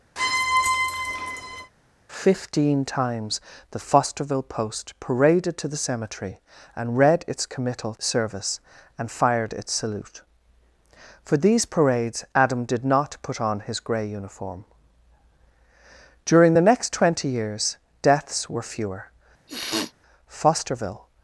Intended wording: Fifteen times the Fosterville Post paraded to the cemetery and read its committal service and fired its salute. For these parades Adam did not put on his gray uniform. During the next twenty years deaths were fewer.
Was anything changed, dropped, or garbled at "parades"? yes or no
no